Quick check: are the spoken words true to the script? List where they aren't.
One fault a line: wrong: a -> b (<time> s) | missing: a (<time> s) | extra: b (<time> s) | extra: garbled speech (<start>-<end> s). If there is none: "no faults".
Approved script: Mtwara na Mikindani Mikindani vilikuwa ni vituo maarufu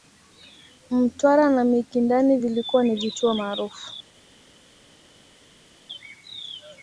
missing: Mikindani (2.4 s)